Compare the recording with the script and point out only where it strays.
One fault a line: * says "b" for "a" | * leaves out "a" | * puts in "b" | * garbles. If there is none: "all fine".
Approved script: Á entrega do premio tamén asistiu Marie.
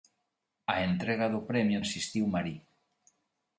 * leaves out "tamén"